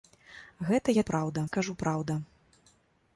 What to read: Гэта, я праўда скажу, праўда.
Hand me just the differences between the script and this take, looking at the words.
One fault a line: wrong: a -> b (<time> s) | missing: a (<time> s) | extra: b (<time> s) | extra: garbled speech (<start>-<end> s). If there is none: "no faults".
no faults